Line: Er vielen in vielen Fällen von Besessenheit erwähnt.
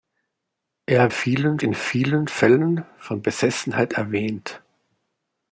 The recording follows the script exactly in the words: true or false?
true